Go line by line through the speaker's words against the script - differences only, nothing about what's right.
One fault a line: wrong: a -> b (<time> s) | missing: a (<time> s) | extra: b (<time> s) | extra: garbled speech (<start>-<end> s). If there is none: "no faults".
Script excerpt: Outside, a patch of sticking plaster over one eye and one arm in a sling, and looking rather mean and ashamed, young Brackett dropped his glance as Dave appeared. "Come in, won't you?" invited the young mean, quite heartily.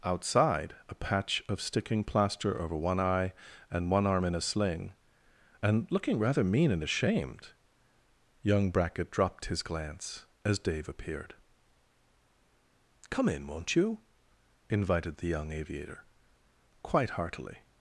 wrong: mean -> aviator (15.5 s)